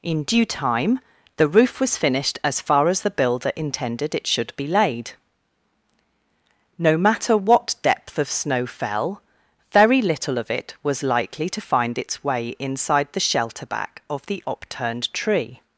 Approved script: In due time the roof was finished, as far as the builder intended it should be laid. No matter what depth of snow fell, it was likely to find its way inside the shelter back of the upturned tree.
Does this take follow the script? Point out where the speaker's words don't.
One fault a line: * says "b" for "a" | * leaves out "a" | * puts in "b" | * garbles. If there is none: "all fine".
* puts in "very little of"